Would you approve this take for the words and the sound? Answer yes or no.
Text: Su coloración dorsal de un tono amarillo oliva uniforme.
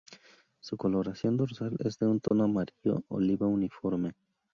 no